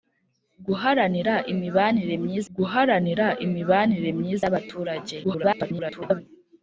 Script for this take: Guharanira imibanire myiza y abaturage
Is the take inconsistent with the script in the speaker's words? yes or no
yes